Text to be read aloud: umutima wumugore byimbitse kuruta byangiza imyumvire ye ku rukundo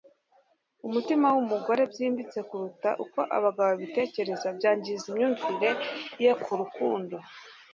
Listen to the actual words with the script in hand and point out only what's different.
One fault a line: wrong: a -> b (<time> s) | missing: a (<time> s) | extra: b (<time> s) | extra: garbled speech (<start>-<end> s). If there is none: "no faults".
extra: uko abagabo babitekereza (3.0 s)